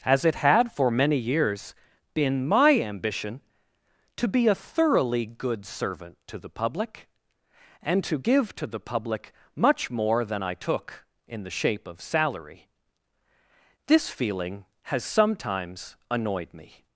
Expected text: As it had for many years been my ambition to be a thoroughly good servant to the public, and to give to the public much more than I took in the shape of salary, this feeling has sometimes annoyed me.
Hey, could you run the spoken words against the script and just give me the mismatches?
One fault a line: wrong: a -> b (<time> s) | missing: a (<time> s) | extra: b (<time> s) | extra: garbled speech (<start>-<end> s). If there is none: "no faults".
no faults